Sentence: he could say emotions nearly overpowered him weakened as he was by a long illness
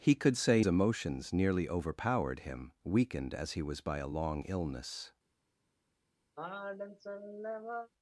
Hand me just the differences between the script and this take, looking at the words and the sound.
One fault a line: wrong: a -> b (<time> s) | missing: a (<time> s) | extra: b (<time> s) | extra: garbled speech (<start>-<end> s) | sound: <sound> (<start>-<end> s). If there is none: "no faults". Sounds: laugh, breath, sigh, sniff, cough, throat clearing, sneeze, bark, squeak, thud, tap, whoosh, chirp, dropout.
sound: sigh (6.4-7.9 s)